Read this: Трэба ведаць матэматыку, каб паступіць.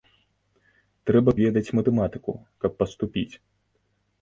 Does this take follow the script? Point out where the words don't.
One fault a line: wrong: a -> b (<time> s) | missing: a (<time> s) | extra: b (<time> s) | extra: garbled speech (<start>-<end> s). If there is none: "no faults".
no faults